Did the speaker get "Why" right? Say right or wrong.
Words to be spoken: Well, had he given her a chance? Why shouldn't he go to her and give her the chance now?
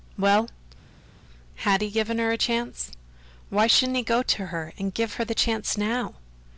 right